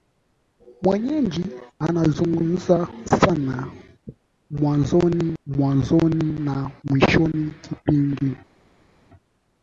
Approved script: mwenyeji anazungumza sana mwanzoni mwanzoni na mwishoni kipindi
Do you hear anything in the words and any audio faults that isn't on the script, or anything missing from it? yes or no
no